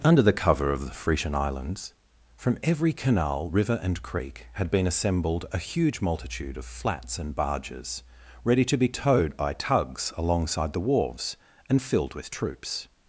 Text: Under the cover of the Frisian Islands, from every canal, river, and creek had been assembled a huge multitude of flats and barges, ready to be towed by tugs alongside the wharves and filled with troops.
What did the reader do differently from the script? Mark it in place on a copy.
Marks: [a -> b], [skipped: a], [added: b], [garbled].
Under the cover of the Frisian Islands, from every canal, river, and creek had been assembled a huge multitude of flats and barges, ready to be towed by tugs alongside the wharves and filled with troops.